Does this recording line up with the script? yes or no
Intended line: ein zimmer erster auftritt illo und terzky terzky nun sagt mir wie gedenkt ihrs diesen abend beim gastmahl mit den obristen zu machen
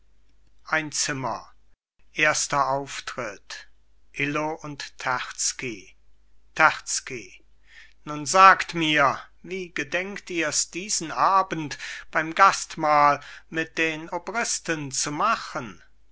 yes